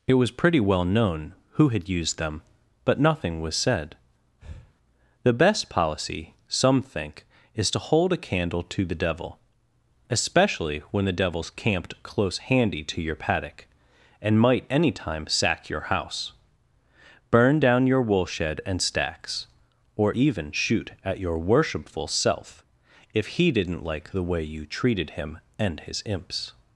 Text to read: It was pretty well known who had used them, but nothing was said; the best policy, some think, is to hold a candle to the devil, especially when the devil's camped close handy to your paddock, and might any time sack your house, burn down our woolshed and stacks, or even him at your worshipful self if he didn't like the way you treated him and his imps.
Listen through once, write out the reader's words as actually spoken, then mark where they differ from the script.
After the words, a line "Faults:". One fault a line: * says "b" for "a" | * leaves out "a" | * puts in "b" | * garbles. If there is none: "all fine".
It was pretty well known who had used them, but nothing was said; the best policy, some think, is to hold a candle to the devil, especially when the devil's camped close handy to your paddock, and might any time sack your house, burn down your woolshed and stacks, or even shoot at your worshipful self if he didn't like the way you treated him and his imps.
Faults:
* says "your" for "our"
* says "shoot" for "him"